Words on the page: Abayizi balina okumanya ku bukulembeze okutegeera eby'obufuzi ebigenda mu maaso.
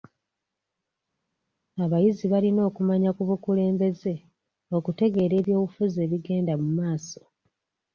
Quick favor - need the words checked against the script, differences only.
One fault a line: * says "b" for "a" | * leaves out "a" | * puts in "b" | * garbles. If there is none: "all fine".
all fine